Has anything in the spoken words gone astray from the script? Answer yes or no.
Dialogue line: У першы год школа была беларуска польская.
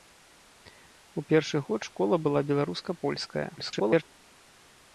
yes